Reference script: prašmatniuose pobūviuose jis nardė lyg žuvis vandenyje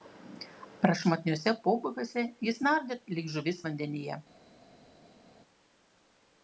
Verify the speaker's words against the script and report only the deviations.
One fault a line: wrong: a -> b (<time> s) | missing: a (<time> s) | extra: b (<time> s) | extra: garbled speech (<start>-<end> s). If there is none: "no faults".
no faults